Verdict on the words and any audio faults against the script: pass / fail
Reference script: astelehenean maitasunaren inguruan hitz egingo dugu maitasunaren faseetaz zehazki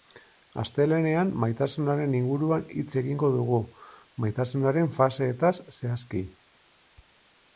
pass